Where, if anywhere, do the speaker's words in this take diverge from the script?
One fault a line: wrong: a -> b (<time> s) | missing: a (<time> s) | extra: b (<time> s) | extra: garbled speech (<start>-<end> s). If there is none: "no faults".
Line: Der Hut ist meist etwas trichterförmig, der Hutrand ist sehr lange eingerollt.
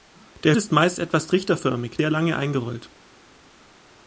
missing: Hut (0.6 s)
missing: der Hutrand ist (2.0 s)